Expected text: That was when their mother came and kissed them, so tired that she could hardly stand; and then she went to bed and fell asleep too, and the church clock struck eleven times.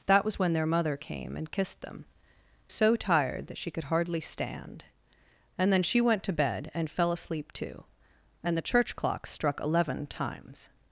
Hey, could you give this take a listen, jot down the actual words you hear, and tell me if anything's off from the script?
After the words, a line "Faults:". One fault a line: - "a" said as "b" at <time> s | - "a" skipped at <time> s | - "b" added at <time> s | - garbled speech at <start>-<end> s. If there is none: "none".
That was when their mother came and kissed them, so tired that she could hardly stand; and then she went to bed and fell asleep too, and the church clock struck eleven times.
Faults:
none